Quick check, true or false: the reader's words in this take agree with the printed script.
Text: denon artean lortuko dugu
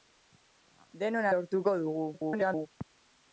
false